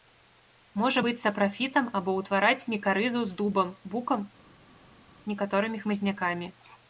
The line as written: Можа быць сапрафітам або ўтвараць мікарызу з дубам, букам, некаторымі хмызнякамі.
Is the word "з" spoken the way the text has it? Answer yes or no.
yes